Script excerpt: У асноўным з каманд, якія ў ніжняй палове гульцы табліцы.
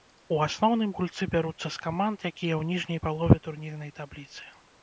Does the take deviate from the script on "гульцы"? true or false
true